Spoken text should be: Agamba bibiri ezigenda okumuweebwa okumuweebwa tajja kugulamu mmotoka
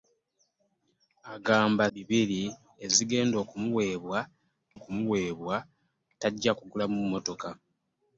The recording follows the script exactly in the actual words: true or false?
true